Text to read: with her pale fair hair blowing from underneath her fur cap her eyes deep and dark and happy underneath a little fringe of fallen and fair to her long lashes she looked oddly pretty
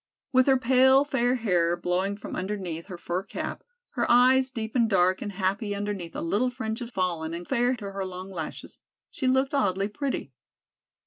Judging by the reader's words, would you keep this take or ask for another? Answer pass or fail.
pass